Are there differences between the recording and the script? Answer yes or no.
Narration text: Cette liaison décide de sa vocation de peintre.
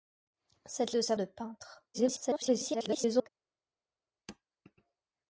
yes